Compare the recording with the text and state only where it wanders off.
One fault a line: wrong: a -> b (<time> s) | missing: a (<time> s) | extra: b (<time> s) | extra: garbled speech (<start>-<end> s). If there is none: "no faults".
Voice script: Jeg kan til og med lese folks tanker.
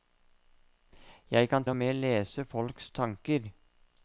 missing: til (1.6 s)